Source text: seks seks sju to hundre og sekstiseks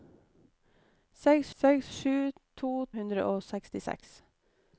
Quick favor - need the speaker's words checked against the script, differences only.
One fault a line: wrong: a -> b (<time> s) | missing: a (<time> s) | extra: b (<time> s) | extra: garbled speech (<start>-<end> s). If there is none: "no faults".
no faults